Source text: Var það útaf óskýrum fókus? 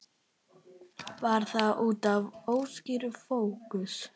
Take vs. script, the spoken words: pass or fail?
pass